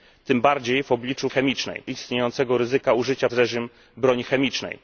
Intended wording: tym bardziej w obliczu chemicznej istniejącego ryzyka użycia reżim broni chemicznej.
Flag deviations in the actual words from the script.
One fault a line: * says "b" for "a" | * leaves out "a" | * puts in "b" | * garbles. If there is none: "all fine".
all fine